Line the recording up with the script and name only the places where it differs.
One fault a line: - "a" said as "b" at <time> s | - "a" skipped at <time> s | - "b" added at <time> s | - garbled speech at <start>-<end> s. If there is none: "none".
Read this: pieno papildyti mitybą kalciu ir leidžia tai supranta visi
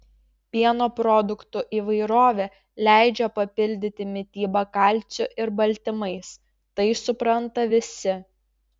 - "produktų įvairovė leidžia" added at 1.0 s
- "leidžia" said as "baltymais" at 5.6 s